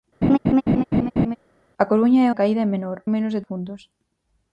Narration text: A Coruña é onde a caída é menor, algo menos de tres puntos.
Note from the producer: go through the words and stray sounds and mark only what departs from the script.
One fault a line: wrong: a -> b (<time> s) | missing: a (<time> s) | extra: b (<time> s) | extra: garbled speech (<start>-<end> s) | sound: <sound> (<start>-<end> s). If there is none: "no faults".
sound: laugh (0.2-1.4 s)
missing: onde (2.3 s)
missing: algo (3.0 s)
missing: tres (3.4 s)